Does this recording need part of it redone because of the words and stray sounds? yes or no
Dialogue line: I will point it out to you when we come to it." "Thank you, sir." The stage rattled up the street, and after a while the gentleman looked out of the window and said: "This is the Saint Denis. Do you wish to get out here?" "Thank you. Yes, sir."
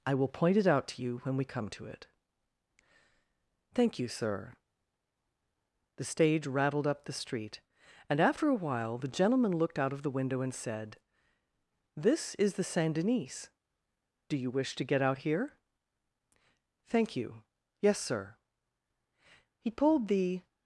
yes